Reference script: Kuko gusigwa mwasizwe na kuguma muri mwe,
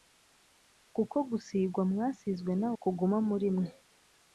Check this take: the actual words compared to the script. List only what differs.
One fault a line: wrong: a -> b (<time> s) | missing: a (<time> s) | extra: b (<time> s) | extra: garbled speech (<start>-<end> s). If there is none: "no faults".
no faults